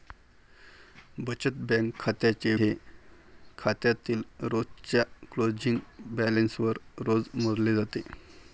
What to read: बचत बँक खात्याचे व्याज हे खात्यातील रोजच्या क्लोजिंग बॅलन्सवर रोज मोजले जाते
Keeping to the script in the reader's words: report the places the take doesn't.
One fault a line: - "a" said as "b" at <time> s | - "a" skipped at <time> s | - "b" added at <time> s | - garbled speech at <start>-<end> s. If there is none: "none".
- "व्याज" skipped at 2.5 s